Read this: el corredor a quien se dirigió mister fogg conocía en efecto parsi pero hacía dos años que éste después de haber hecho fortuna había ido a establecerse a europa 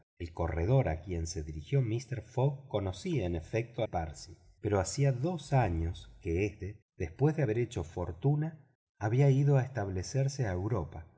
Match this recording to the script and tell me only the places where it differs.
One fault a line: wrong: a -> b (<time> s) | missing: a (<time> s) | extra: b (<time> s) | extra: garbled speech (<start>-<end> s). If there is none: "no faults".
no faults